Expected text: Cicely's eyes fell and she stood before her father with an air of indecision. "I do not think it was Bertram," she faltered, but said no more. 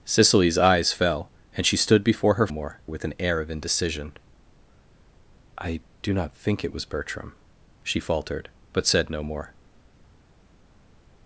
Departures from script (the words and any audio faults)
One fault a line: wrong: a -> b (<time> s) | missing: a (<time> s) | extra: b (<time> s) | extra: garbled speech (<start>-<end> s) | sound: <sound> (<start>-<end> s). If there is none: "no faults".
wrong: father -> more (2.5 s)